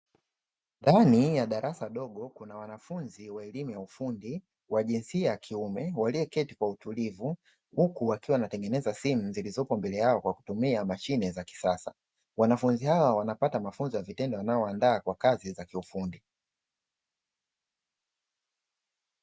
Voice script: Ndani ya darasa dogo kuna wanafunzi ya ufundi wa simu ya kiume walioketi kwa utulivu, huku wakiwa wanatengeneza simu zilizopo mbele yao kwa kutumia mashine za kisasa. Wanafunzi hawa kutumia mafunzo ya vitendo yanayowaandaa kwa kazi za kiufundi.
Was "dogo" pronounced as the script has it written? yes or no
yes